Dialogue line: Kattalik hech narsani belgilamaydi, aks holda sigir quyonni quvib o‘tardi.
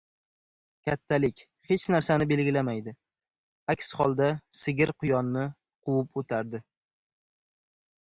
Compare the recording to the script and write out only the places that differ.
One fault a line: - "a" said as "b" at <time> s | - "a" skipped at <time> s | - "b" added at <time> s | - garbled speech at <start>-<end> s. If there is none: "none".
none